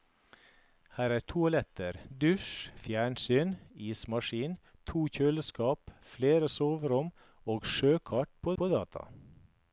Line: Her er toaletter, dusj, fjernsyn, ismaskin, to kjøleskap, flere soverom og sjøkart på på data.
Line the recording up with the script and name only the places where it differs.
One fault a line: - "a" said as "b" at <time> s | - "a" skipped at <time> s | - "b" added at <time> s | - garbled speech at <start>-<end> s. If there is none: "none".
none